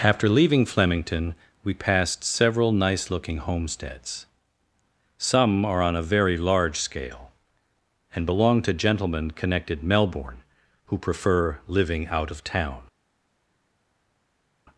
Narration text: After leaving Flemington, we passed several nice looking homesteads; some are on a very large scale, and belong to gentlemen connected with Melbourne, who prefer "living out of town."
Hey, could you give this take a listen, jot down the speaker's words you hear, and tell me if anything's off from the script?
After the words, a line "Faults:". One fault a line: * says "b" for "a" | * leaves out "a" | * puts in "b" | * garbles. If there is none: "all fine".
After leaving Flemington, we passed several nice looking homesteads; some are on a very large scale, and belong to gentlemen connected Melbourne, who prefer "living out of town."
Faults:
* leaves out "with"